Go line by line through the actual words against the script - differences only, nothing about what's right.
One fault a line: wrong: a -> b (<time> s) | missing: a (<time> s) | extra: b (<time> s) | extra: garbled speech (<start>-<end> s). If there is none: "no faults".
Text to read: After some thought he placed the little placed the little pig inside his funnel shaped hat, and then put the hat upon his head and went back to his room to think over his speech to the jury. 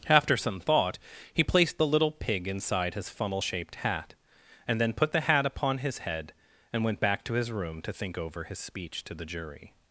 missing: placed the little (2.1 s)